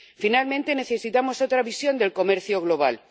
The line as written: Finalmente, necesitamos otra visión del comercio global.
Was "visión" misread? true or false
false